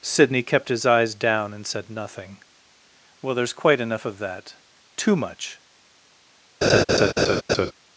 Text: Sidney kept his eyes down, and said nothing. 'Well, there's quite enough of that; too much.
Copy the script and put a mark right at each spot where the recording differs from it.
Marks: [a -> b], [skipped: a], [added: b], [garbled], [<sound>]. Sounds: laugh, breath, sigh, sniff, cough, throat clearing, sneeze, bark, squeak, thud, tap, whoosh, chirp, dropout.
Sidney kept his eyes down, and said nothing. 'Well, there's quite enough of that; too much. [laugh]